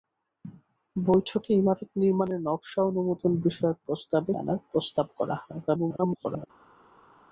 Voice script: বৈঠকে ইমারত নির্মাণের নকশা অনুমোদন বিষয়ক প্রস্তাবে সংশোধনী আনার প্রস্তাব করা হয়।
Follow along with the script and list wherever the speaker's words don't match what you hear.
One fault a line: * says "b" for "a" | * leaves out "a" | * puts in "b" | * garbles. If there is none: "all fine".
* leaves out "সংশোধনী"
* garbles